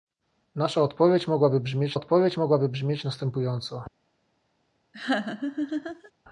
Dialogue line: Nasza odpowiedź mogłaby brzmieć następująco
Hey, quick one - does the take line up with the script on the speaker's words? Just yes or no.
no